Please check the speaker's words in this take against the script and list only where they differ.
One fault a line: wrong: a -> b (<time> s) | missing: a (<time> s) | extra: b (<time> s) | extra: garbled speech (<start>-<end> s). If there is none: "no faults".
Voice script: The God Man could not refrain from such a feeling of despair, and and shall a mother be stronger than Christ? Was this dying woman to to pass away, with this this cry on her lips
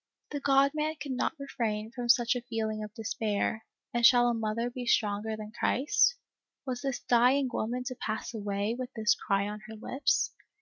missing: and (4.0 s)
missing: to (8.0 s)
missing: this (9.1 s)